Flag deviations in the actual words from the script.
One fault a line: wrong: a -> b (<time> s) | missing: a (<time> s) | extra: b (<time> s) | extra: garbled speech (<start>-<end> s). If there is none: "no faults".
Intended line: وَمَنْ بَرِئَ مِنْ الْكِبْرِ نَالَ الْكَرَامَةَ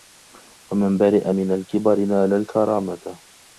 no faults